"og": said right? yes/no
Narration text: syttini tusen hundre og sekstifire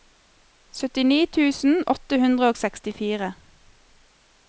yes